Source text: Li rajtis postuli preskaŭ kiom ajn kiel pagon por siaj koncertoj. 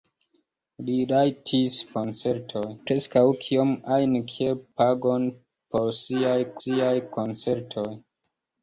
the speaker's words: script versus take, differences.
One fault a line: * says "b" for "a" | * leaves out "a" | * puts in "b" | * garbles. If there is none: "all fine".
* says "koncertoj" for "postuli"
* puts in "siaj"